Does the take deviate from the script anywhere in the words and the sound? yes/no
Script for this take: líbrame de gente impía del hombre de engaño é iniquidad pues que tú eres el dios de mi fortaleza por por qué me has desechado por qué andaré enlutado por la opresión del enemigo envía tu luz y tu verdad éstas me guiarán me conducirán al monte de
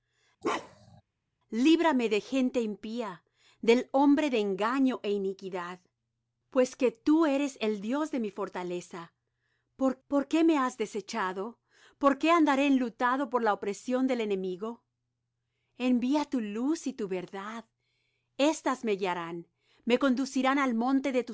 yes